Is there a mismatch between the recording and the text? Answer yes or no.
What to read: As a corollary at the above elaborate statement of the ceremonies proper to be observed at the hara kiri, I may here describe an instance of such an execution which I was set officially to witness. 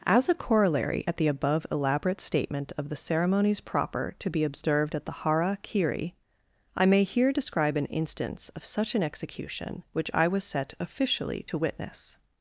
no